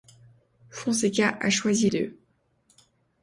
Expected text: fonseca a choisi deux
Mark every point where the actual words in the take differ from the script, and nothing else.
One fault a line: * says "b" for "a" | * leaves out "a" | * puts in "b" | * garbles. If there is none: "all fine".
all fine